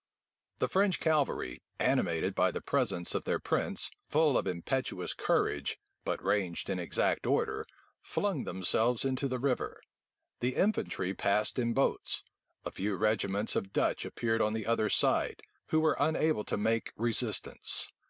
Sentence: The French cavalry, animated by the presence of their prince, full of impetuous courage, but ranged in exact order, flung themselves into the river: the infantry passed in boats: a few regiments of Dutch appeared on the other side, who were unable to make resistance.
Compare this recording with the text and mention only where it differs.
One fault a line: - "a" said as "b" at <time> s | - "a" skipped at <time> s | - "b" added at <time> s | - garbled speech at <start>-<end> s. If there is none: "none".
none